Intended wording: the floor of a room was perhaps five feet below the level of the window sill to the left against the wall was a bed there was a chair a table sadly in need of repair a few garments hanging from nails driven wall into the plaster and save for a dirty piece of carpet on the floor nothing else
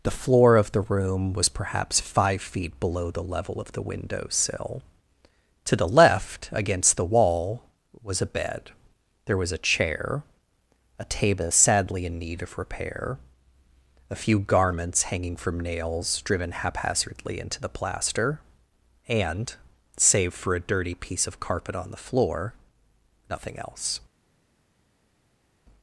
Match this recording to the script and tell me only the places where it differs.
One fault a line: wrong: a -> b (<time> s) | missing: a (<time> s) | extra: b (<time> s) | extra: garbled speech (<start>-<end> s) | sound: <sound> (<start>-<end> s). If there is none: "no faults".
wrong: a -> the (0.7 s)
wrong: wall -> haphazardly (16.5 s)